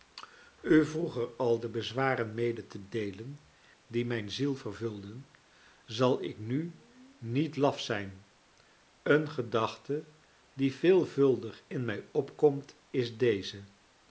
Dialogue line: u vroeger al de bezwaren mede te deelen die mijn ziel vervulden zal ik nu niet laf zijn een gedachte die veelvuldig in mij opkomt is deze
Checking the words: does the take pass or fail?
pass